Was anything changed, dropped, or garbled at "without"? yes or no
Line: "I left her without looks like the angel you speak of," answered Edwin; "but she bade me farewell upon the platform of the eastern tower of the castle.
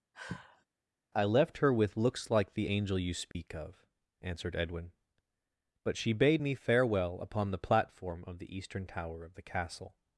yes